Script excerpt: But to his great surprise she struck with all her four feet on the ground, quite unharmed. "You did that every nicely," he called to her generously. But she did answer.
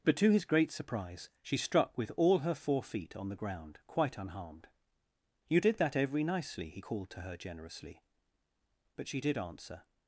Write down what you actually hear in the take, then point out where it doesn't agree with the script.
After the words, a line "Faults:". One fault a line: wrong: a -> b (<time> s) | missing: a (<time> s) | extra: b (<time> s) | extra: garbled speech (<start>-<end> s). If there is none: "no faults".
But to his great surprise she struck with all her four feet on the ground, quite unharmed. "You did that every nicely," he called to her generously. But she did answer.
Faults:
no faults